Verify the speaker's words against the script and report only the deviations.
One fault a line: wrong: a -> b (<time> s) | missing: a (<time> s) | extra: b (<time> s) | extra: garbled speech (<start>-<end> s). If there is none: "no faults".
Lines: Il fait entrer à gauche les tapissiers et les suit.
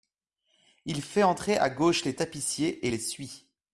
no faults